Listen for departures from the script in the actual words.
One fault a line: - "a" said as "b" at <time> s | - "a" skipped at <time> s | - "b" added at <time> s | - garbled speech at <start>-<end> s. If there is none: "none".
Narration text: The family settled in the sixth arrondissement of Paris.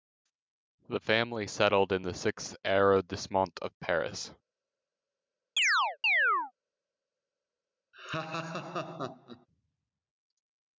none